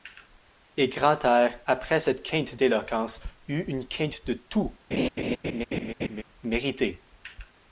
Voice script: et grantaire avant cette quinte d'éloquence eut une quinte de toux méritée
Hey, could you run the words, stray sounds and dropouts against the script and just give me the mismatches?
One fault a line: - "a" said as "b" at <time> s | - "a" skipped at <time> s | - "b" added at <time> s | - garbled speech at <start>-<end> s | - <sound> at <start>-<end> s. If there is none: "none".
- "avant" said as "après" at 1.7 s
- laugh at 4.9-6.2 s